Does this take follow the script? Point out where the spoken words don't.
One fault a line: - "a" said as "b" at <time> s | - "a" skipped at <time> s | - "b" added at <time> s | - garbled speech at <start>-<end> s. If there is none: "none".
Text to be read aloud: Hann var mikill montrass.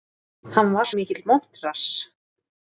none